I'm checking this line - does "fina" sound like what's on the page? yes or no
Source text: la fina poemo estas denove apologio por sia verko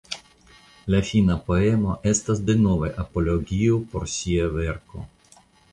yes